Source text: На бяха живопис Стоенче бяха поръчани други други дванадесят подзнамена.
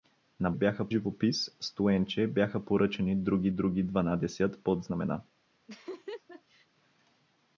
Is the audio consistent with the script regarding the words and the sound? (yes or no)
no